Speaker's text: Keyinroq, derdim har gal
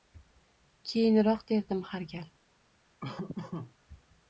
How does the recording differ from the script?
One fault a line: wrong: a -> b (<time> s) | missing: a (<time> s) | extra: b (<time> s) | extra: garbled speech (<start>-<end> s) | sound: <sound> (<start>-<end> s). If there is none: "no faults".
sound: laugh (3.0-3.7 s)